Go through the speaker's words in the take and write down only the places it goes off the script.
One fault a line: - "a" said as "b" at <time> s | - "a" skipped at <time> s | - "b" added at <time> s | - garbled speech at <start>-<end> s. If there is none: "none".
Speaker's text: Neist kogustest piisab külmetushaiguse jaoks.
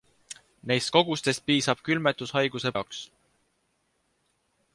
none